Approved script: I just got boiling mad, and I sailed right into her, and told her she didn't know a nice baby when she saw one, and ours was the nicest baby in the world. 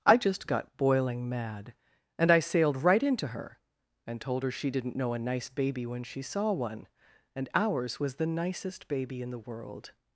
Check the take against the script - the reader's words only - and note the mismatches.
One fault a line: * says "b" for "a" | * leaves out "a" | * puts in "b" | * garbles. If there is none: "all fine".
all fine